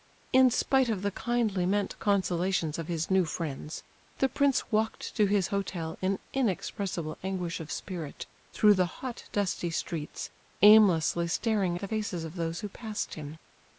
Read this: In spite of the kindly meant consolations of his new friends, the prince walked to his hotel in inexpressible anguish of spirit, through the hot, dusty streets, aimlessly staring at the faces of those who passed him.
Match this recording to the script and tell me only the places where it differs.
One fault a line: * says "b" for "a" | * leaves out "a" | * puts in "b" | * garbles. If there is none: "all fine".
* leaves out "at"